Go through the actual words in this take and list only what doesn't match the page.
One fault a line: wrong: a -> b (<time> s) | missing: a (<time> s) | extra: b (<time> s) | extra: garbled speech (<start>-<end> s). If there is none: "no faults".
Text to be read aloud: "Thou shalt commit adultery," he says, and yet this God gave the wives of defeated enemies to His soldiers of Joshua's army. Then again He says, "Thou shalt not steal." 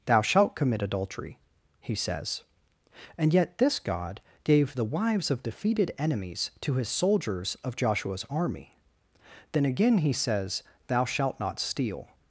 no faults